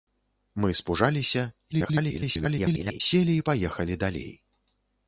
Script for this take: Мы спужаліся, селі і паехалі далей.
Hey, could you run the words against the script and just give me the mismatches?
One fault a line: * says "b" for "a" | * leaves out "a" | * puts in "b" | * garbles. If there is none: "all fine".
* garbles